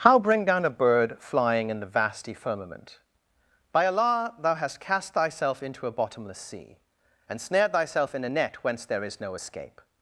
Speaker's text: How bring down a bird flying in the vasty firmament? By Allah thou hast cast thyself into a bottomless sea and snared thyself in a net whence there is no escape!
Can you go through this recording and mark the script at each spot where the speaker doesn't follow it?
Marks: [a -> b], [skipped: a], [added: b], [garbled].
How bring down a bird flying in the vasty firmament? By Allah thou hast cast thyself into a bottomless sea and snared thyself in a net whence there is no escape!